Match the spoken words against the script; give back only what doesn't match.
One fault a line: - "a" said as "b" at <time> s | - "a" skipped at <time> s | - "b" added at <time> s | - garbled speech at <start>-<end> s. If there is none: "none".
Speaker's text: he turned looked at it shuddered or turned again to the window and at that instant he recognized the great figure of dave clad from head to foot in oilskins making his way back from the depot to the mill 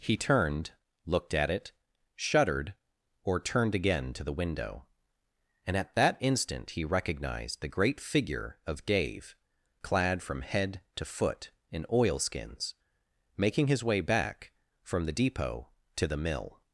none